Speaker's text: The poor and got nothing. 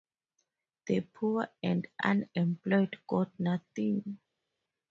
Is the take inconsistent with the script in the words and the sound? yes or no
yes